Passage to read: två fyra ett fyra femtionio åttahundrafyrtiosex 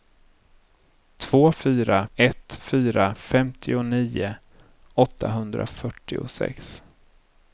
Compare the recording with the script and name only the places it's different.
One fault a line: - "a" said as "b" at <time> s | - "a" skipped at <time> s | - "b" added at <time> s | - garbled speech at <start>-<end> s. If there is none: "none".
none